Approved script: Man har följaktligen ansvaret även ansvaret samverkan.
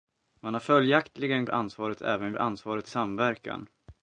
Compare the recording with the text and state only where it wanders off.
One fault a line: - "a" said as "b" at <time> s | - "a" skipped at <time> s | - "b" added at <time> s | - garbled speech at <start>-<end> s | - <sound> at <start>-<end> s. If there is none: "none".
none